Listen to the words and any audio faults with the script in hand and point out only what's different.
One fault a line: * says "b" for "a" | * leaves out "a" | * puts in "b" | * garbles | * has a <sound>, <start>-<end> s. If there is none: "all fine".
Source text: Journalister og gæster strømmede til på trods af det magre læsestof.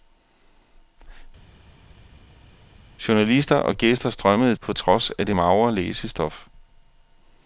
* leaves out "til"